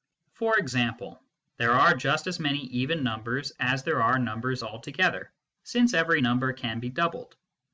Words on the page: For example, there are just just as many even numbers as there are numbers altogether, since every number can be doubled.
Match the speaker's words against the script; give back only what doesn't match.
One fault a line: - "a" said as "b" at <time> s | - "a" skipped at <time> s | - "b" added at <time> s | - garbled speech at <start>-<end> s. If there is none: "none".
- "just" skipped at 2.3 s